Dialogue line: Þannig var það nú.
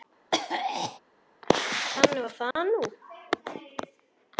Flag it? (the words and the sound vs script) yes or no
yes